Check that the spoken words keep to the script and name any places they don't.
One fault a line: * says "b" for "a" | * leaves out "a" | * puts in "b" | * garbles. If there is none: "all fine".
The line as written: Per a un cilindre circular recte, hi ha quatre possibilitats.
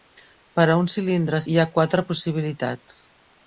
* leaves out "circular recte"